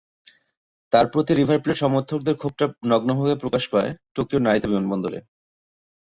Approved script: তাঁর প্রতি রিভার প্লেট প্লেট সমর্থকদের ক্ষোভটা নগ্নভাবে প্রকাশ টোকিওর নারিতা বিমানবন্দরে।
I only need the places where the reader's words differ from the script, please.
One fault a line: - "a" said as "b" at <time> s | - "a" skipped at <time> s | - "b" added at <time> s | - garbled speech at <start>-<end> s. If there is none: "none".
- "প্লেট" skipped at 1.8 s
- "পায়" added at 3.7 s